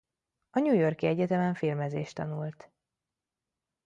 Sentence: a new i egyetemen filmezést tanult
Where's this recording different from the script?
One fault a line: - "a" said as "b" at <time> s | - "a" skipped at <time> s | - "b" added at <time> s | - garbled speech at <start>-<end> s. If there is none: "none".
- "york" added at 0.7 s